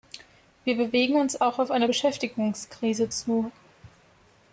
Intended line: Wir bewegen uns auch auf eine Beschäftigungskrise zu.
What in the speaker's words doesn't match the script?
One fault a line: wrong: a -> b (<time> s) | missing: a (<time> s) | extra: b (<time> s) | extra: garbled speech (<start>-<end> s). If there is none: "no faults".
no faults